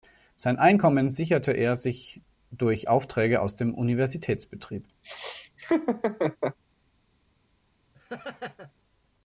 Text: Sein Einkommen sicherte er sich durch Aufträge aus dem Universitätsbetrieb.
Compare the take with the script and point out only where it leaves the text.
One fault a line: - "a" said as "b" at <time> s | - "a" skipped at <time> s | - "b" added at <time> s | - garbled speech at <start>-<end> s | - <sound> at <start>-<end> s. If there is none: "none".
- laugh at 5.0-6.6 s
- laugh at 7.9-8.7 s